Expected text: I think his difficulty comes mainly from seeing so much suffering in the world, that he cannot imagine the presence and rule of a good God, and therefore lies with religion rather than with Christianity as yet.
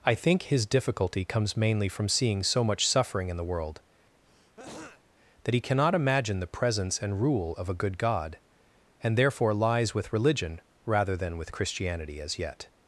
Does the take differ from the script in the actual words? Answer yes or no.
no